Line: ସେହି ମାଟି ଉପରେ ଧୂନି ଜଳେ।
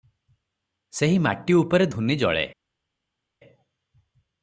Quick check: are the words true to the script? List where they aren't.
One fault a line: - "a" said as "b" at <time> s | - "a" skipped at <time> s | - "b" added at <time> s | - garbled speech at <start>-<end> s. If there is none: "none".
none